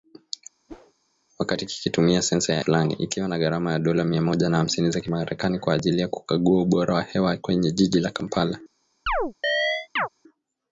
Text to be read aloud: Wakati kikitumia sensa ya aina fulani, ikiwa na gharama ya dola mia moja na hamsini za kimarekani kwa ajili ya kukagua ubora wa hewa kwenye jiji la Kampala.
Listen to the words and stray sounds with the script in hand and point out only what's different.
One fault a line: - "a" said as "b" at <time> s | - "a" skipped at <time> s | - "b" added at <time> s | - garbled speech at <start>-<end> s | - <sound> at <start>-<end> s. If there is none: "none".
- whoosh at 0.7-0.9 s
- "aina" skipped at 2.6 s
- chirp at 9.1-10.1 s